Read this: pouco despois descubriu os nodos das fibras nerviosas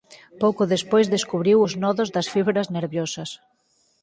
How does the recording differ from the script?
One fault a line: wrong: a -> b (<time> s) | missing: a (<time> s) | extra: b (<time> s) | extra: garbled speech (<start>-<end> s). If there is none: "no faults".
no faults